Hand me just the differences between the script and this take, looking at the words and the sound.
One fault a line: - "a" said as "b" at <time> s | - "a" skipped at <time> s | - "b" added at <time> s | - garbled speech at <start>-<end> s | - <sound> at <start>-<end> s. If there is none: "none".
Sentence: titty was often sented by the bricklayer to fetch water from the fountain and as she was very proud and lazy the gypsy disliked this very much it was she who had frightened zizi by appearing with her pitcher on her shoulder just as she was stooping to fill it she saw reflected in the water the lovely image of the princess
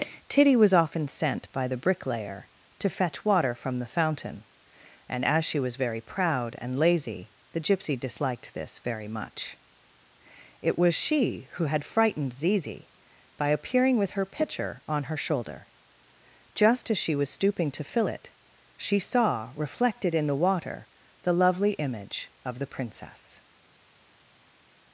- "sented" said as "sent" at 1.1 s